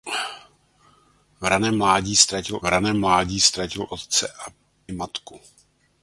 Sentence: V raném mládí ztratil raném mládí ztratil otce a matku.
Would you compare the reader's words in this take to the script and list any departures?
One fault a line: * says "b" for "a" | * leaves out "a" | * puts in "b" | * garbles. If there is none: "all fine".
all fine